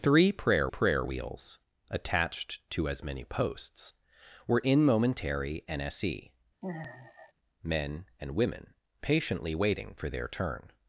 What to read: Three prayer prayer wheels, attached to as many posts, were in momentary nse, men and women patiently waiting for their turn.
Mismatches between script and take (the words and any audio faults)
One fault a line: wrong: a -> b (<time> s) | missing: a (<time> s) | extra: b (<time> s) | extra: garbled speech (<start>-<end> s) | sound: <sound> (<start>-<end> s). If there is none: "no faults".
sound: sigh (6.6-7.3 s)